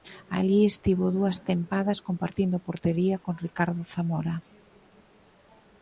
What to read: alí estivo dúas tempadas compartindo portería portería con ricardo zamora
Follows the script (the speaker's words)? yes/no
no